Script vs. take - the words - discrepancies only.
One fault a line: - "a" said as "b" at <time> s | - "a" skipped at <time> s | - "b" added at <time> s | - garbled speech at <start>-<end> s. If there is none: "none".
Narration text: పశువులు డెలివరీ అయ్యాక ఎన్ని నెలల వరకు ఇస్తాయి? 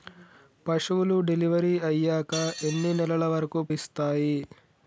none